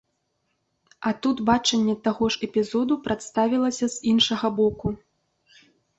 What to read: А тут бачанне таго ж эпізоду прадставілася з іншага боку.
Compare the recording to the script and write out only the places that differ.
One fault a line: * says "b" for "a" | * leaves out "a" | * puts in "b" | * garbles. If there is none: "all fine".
all fine